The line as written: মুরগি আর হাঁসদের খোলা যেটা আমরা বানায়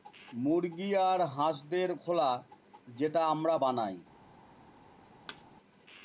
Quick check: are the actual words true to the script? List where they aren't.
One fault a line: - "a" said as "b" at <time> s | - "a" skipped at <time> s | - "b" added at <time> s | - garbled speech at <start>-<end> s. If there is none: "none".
none